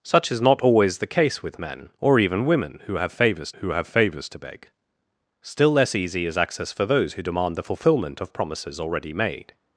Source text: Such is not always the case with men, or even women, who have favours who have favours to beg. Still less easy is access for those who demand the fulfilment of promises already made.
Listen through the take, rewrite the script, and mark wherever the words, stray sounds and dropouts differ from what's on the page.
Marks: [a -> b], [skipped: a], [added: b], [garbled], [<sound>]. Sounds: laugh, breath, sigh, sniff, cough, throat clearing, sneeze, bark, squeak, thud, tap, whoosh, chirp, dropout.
Such is not always the case with men, or even women, who have favours who have favours to beg. Still less easy is access for those who demand the fulfilment of promises already made.